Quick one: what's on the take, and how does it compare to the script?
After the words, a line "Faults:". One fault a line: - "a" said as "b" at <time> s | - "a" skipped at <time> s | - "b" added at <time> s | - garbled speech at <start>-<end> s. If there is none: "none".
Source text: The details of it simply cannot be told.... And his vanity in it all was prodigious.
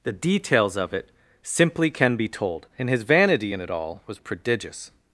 The details of it simply can be told.... And his vanity in it all was prodigious.
Faults:
- "cannot" said as "can" at 1.9 s